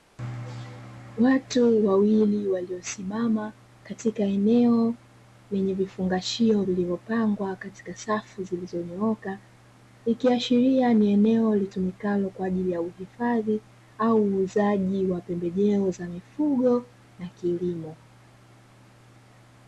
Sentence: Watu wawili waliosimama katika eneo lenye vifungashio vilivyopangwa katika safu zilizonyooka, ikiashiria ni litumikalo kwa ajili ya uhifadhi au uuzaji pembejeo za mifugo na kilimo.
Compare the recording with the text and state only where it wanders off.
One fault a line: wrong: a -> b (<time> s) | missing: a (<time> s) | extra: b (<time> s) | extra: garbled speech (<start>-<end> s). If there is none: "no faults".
extra: eneo (11.1 s)
extra: wa (15.0 s)